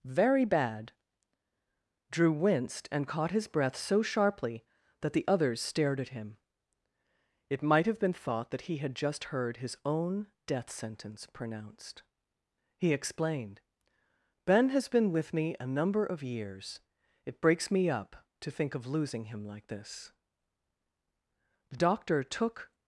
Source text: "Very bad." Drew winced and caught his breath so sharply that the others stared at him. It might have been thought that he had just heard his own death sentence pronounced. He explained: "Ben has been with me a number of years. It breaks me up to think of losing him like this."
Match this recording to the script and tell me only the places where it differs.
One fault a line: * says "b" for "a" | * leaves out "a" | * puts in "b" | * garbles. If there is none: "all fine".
* puts in "The doctor took"